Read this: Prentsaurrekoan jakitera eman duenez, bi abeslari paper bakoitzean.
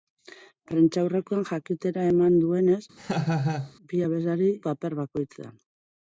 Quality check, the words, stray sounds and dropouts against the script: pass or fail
fail